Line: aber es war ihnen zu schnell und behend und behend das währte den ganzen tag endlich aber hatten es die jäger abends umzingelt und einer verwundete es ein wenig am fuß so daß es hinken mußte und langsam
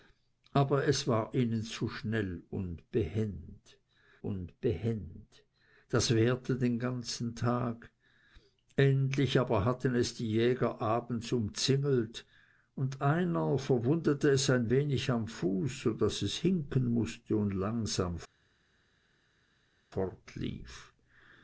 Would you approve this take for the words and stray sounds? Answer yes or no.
yes